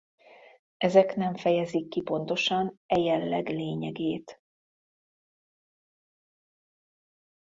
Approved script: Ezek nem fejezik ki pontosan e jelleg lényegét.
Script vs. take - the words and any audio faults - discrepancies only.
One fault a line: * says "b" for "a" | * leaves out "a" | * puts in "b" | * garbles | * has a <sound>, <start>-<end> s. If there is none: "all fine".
all fine